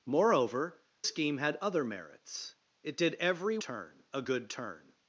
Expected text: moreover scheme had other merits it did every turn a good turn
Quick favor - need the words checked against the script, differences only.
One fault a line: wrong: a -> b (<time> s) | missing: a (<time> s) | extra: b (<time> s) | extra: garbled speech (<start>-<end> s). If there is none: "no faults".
no faults